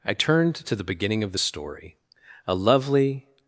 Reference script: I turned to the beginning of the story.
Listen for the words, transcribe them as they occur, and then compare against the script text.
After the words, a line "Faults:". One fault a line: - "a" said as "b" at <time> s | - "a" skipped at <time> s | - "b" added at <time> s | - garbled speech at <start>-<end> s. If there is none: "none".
I turned to the beginning of the story. A lovely
Faults:
- "A lovely" added at 2.5 s